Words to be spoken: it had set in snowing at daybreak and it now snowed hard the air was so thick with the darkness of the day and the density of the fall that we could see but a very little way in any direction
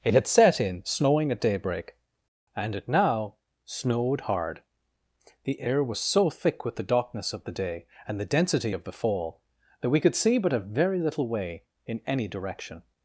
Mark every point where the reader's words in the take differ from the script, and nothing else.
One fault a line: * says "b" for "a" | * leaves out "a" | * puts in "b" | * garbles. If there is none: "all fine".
all fine